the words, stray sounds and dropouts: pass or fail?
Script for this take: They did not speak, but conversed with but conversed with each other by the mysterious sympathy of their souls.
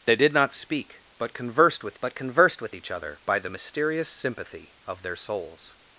pass